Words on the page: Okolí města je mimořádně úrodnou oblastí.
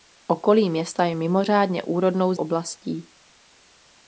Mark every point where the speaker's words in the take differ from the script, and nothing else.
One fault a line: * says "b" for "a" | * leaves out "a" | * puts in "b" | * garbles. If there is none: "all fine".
all fine